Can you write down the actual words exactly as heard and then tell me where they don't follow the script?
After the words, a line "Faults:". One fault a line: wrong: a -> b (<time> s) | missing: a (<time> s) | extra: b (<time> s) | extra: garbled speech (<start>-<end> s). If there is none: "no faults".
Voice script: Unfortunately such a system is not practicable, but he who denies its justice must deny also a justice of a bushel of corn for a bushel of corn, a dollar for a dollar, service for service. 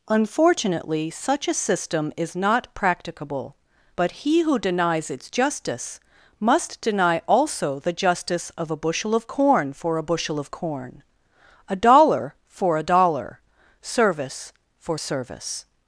Unfortunately such a system is not practicable, but he who denies its justice must deny also the justice of a bushel of corn for a bushel of corn, a dollar for a dollar, service for service.
Faults:
wrong: a -> the (7.8 s)